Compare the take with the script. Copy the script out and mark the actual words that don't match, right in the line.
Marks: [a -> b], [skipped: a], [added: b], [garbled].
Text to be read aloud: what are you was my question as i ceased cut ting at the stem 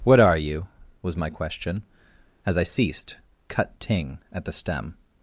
what are you was my question as i ceased cut ting at the stem